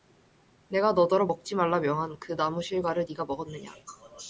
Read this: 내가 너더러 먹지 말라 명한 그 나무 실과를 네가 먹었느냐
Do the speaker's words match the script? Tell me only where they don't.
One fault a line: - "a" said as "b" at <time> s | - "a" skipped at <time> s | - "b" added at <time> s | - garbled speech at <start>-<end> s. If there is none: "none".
none